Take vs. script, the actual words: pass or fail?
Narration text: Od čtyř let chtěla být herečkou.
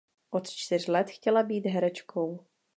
pass